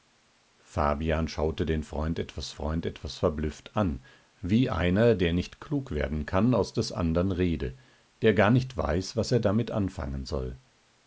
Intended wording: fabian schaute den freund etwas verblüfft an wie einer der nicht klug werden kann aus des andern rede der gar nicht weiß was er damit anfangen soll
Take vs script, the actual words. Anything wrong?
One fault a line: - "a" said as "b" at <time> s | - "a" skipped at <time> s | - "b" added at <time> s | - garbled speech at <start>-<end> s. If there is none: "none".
- "freund etwas" added at 2.5 s